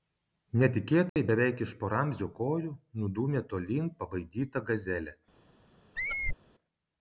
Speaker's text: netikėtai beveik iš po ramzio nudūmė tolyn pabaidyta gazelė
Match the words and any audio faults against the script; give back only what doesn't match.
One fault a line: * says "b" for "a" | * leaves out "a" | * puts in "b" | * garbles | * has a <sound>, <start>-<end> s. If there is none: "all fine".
* has a dropout, 1.1-1.2 s
* puts in "kojų"
* has a squeak, 6.0-6.4 s